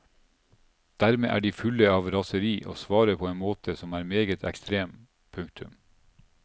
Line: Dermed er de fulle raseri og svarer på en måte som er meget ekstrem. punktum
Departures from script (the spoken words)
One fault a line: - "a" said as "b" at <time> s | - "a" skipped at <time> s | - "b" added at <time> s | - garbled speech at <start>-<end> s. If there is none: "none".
- "av" added at 2.0 s